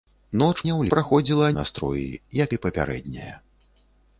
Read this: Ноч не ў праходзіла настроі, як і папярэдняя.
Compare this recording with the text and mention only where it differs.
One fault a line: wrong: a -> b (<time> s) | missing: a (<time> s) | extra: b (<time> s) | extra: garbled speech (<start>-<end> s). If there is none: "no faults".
no faults